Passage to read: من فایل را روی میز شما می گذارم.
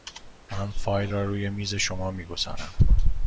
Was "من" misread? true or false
false